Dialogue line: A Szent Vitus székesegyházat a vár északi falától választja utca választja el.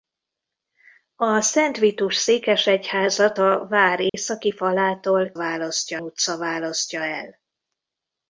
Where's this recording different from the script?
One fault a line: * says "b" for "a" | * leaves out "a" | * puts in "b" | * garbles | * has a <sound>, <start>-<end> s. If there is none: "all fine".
* has a dropout, 4.1-4.1 s